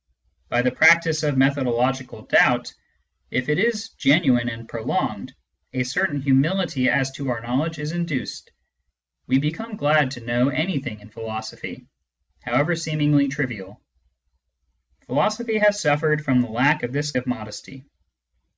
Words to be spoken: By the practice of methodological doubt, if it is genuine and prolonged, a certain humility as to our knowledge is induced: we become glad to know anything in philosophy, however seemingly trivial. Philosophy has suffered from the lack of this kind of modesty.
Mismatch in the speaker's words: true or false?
true